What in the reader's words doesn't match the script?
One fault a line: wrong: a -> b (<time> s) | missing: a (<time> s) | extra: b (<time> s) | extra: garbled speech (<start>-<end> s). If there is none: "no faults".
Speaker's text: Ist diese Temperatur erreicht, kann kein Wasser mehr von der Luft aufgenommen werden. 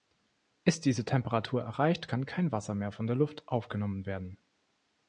no faults